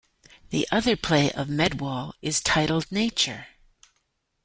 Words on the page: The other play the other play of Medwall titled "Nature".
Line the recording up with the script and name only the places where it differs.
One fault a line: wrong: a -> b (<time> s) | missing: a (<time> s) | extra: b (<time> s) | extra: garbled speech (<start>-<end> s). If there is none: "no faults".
missing: the other play (1.3 s)
extra: is (2.2 s)